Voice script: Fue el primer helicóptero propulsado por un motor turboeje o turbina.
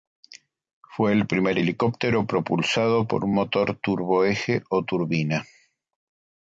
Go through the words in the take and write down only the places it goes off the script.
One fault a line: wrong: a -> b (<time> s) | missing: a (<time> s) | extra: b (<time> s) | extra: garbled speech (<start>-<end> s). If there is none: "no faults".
no faults